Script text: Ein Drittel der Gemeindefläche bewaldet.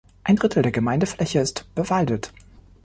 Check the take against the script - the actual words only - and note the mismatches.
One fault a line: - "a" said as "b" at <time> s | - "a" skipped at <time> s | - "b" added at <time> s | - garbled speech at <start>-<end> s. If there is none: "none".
- "ist" added at 1.4 s